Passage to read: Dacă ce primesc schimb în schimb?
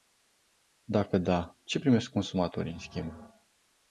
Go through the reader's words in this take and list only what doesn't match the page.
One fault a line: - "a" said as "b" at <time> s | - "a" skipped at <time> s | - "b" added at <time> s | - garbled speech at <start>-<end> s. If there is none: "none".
- "da" added at 1.2 s
- "schimb" said as "consumatorii" at 2.1 s